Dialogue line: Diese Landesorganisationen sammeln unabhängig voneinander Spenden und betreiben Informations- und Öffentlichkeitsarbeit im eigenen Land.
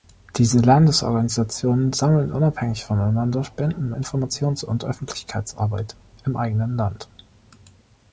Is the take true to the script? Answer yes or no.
no